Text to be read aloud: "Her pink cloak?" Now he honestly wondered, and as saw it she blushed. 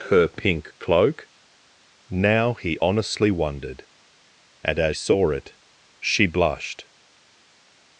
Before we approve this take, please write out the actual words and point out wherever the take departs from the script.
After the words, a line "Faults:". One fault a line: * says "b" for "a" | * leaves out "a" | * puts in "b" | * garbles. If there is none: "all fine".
"Her pink cloak?" Now he honestly wondered, and as saw it she blushed.
Faults:
all fine